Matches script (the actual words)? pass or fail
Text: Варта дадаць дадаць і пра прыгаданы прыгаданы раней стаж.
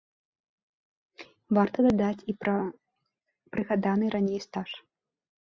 fail